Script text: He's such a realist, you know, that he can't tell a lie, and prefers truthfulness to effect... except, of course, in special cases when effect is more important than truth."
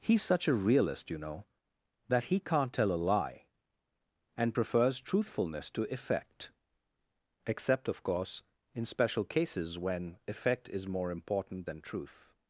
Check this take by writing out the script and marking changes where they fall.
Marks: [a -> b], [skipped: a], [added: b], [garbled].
He's such a realist, you know, that he can't tell a lie, and prefers truthfulness to effect... except, of course, in special cases when effect is more important than truth."